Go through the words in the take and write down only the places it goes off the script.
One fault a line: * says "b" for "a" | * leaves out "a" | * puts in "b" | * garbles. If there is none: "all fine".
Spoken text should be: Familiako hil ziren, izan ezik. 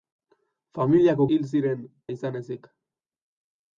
all fine